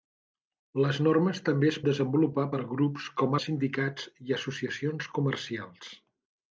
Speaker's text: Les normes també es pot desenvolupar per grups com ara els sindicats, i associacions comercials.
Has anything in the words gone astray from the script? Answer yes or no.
yes